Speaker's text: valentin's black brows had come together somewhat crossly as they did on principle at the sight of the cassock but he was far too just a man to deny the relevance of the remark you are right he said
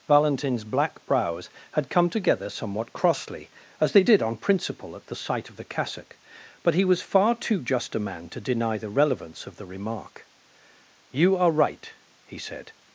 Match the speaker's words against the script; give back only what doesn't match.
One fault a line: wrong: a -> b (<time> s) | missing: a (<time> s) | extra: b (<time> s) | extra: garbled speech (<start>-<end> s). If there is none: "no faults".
no faults